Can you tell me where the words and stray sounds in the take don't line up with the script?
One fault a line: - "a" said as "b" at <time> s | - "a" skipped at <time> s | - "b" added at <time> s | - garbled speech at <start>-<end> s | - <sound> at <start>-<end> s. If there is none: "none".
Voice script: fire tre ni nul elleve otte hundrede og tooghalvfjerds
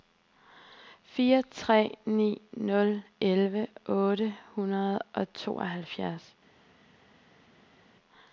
none